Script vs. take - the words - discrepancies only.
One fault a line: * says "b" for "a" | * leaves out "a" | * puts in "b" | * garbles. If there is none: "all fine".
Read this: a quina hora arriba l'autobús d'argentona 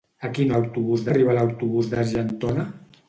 * says "l'autobús" for "hora"